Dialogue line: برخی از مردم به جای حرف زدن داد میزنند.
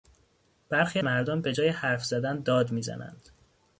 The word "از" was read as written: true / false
false